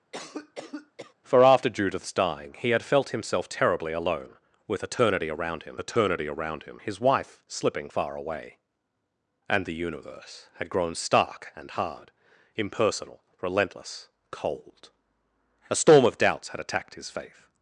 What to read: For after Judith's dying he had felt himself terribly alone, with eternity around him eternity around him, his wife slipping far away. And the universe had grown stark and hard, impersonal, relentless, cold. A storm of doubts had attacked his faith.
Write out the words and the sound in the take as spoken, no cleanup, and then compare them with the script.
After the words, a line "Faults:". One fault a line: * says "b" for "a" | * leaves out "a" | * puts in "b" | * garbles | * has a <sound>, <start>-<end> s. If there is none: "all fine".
For after Judith's dying he had felt himself terribly alone, with eternity around him eternity around him, his wife slipping far away. And the universe had grown stark and hard, impersonal, relentless, cold. A storm of doubts had attacked his faith.
Faults:
* has a cough, 0.1-1.1 s